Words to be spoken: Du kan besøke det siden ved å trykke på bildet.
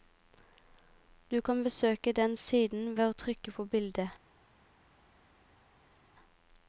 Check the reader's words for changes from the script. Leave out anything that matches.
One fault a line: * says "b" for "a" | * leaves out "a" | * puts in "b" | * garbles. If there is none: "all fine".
* says "den" for "det"